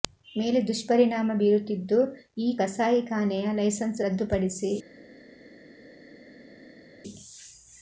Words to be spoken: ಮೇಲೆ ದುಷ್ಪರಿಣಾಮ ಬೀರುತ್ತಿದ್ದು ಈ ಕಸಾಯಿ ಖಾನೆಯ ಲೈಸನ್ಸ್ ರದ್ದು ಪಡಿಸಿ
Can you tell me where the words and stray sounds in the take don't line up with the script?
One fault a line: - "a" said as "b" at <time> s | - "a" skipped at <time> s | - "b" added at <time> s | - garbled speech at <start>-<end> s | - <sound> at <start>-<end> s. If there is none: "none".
none